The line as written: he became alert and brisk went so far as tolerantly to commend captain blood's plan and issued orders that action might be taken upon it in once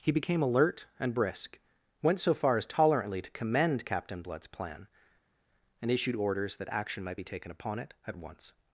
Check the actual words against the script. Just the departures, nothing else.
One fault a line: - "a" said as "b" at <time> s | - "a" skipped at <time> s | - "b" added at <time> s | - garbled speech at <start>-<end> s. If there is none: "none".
- "in" said as "at" at 8.1 s